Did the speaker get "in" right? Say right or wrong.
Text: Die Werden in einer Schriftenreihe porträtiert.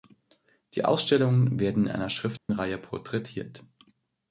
right